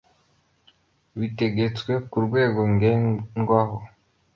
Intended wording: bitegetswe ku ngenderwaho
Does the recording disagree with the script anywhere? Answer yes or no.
yes